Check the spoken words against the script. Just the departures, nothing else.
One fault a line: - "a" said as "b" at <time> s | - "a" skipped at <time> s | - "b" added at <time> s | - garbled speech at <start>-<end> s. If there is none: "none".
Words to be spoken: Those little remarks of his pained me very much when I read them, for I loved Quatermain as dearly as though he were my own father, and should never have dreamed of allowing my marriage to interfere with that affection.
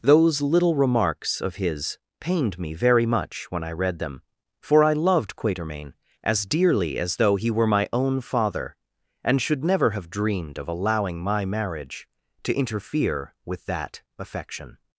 none